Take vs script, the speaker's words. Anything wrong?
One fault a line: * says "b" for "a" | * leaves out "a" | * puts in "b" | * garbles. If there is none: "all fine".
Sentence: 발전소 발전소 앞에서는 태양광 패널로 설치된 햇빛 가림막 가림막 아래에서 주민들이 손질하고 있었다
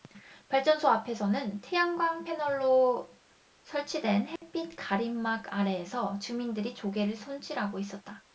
* leaves out "발전소"
* leaves out "가림막"
* puts in "조개를"